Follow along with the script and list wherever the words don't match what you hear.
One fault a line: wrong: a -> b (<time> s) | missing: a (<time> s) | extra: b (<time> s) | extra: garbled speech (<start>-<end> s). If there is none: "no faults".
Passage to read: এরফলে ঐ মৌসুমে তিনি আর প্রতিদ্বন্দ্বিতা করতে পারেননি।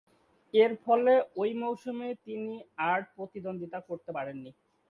no faults